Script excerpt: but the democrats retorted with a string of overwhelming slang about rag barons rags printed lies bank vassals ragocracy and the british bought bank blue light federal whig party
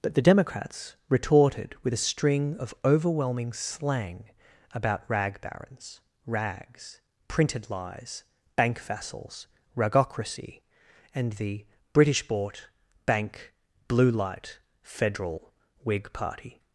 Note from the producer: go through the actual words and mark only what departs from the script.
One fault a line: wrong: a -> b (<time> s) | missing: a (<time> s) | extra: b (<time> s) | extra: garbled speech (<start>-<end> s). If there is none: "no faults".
no faults